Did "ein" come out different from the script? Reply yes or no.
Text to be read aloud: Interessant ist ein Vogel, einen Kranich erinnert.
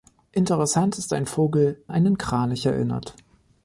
no